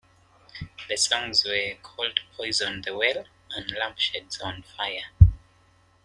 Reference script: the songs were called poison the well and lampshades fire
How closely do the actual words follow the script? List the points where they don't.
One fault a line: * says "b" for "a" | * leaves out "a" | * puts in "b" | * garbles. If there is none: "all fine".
* puts in "on"